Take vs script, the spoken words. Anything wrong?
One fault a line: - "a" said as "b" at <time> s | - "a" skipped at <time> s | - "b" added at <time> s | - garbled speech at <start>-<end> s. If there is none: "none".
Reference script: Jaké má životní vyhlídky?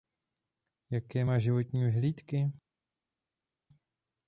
none